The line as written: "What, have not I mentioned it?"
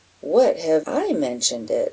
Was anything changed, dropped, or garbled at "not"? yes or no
yes